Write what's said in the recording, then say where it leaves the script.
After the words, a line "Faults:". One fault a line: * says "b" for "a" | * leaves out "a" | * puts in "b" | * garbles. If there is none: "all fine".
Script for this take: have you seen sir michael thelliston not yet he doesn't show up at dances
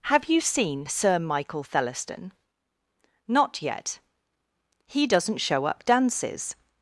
have you seen sir michael thelliston not yet he doesn't show up dances
Faults:
* leaves out "at"